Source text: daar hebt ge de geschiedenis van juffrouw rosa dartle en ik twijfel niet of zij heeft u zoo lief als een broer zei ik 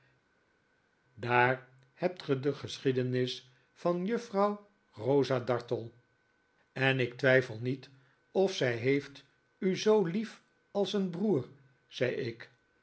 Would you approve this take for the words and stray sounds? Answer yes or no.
yes